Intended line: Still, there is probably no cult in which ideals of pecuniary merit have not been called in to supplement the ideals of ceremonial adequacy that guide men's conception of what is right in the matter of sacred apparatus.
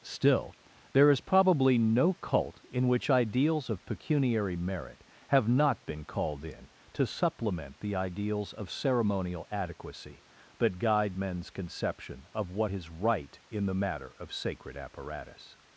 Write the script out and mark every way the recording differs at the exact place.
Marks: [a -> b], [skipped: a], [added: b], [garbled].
Still, there is probably no cult in which ideals of pecuniary merit have not been called in to supplement the ideals of ceremonial adequacy that guide men's conception of what is right in the matter of sacred apparatus.